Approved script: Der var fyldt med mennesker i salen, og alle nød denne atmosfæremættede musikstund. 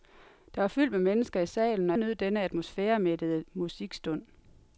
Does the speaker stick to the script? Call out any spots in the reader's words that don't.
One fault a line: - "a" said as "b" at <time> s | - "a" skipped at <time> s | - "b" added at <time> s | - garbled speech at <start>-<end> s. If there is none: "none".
- "alle" skipped at 2.0 s